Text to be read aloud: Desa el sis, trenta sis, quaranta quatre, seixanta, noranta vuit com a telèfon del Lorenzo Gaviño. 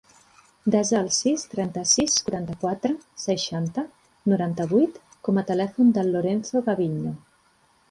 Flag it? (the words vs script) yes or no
no